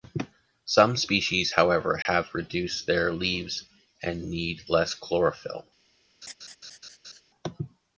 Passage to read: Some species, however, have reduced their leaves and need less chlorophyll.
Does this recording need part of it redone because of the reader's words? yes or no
no